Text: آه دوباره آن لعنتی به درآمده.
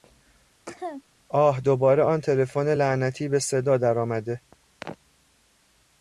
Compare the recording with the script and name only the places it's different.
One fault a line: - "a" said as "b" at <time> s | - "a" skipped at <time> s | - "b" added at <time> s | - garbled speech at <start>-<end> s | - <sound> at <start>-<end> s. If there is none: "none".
- cough at 0.7-1.0 s
- "تلفن" added at 2.2 s
- "صدا" added at 3.4 s